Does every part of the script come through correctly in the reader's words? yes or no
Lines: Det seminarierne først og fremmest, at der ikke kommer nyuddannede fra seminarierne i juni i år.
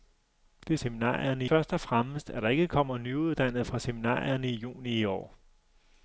yes